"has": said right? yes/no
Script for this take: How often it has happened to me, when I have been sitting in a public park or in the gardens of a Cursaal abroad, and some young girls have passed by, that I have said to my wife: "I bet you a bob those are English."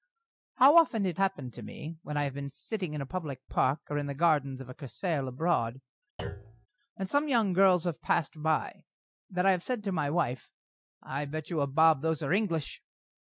no